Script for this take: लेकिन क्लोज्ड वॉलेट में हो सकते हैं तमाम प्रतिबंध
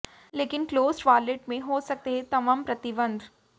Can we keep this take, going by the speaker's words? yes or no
yes